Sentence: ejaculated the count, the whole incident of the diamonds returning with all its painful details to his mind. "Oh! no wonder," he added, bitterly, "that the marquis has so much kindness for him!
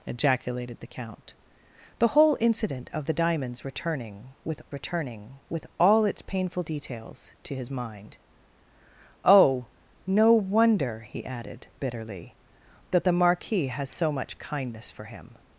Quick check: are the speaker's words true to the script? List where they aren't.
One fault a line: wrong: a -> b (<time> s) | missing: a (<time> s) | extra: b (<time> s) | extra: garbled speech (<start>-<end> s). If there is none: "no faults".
extra: returning with (4.7 s)